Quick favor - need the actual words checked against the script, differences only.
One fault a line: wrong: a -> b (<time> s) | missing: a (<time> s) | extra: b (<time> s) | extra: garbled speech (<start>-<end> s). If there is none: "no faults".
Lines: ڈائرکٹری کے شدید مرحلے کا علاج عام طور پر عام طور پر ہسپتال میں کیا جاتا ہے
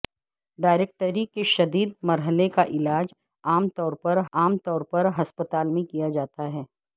no faults